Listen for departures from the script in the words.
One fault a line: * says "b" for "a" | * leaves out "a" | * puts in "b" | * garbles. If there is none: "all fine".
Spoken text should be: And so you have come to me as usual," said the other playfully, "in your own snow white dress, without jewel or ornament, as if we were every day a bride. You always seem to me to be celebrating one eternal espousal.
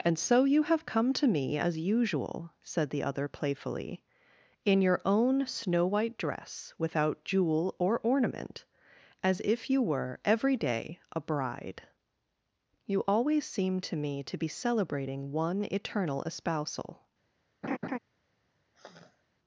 * says "you" for "we"